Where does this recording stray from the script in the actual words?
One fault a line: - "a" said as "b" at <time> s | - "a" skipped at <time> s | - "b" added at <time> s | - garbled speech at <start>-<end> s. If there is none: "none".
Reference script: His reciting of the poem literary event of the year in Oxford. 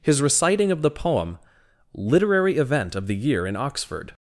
none